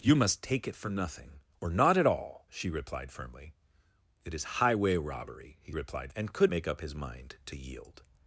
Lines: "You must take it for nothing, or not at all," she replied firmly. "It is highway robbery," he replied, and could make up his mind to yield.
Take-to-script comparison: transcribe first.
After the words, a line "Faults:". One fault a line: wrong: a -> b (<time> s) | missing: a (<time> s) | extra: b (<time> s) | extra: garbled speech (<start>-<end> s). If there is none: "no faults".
"You must take it for nothing, or not at all," she replied firmly. "It is highway robbery," he replied, and could make up his mind to yield.
Faults:
no faults